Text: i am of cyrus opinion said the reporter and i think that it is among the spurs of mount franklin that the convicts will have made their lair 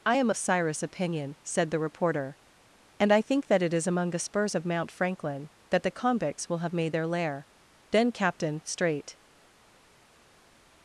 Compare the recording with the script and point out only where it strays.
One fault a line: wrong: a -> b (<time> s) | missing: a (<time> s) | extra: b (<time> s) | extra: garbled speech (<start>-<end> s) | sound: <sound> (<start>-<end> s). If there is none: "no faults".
extra: then captain straight (7.9 s)